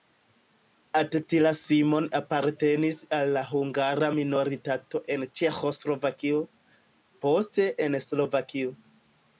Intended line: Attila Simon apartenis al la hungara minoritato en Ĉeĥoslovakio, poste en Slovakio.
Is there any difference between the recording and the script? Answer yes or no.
no